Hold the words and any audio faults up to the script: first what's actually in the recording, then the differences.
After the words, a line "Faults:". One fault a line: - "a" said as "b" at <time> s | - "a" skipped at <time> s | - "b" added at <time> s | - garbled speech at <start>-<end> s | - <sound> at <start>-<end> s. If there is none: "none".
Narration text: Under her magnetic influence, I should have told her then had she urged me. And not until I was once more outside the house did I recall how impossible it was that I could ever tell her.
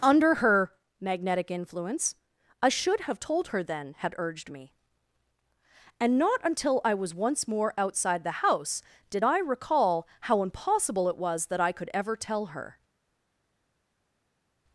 Under her magnetic influence, I should have told her then had urged me. And not until I was once more outside the house did I recall how impossible it was that I could ever tell her.
Faults:
- "she" skipped at 4.1 s